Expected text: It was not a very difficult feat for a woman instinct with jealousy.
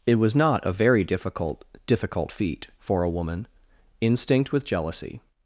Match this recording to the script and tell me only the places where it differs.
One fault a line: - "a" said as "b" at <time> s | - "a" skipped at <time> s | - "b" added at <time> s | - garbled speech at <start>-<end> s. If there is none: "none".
- "difficult" added at 1.9 s